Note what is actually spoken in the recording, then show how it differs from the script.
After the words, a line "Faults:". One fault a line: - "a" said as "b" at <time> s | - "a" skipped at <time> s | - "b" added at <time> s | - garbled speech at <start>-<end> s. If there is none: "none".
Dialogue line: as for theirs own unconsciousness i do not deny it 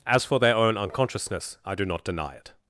as for their own unconsciousness i do not deny it
Faults:
- "theirs" said as "their" at 0.4 s